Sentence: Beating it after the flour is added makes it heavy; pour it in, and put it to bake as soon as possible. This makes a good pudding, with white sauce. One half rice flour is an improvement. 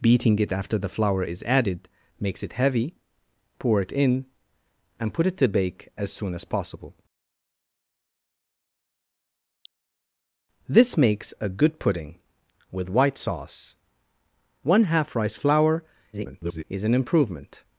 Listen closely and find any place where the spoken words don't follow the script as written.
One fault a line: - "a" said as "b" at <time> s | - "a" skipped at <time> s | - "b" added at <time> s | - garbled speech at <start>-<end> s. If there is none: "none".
- garbled speech at 16.1-16.6 s